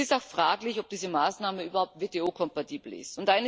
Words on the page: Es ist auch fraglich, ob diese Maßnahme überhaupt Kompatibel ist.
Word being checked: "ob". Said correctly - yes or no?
yes